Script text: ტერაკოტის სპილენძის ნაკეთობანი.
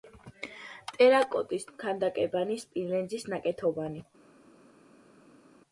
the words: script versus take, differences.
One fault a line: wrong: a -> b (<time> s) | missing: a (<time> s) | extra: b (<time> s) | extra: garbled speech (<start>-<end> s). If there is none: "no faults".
extra: ქანდაკებანი (1.9 s)